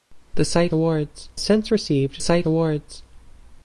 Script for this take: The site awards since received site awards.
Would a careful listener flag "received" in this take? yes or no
no